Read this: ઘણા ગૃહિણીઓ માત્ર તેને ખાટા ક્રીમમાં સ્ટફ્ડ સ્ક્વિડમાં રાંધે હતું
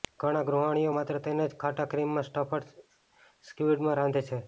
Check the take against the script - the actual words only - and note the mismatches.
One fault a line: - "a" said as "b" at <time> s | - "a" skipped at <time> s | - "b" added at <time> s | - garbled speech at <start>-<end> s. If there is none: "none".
- "જ" added at 1.5 s
- "હતું" said as "છે" at 4.2 s